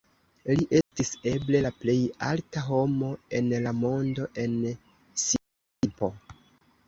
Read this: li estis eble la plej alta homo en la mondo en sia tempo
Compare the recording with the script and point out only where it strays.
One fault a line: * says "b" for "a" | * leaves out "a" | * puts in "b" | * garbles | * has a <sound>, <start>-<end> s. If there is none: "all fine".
* has a dropout, 0.8-0.9 s